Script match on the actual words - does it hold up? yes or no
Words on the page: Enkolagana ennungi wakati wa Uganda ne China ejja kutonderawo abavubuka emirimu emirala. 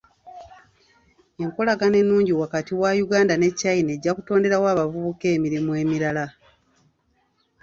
yes